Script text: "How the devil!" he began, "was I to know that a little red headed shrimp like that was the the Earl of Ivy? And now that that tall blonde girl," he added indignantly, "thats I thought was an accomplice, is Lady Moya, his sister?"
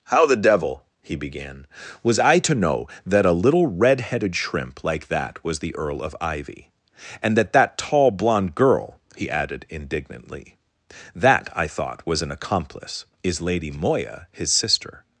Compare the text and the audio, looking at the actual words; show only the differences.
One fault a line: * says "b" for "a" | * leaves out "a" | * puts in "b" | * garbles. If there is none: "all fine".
* leaves out "the"
* leaves out "now"
* says "that" for "thats"